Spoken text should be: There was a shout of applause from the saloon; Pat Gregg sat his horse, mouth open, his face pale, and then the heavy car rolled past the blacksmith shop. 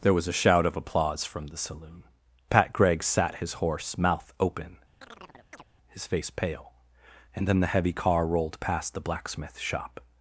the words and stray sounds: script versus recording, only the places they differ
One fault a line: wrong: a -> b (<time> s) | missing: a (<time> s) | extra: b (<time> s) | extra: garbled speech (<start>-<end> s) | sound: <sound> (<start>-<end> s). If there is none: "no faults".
sound: chirp (5.0-5.6 s)